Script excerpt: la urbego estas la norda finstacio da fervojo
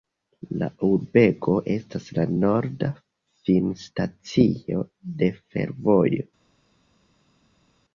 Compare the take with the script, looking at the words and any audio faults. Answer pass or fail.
fail